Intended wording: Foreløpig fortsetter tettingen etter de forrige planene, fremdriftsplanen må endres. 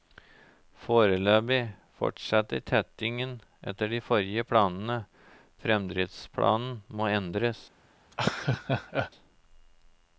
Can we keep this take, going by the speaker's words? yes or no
yes